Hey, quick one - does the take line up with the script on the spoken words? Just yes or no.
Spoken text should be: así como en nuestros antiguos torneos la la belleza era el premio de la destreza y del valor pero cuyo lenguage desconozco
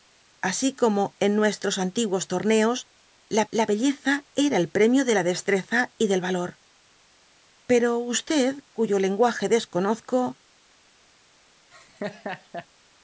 yes